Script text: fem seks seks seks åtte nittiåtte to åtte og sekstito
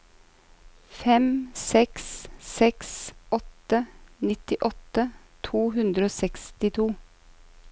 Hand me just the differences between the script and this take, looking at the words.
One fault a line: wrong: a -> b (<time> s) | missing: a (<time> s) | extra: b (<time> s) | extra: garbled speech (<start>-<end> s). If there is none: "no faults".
missing: seks (2.9 s)
wrong: åtte -> hundre (5.8 s)